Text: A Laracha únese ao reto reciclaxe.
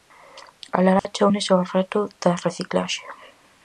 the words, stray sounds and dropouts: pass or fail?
fail